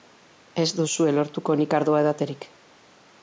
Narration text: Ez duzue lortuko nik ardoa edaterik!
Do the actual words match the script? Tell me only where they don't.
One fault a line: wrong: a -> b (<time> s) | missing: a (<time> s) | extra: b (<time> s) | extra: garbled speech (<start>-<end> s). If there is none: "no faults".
no faults